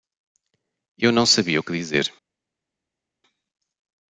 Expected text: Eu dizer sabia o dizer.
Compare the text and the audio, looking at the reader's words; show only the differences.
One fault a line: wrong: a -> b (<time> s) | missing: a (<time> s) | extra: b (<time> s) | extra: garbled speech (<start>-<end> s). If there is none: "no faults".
wrong: dizer -> não (1.1 s)
extra: que (1.6 s)